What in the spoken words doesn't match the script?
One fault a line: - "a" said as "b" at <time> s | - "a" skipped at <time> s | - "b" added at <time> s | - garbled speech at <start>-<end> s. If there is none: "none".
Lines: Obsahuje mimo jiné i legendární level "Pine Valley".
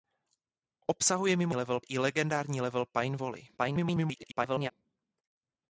- "jiné" said as "level" at 1.5 s
- garbled speech at 3.6-4.7 s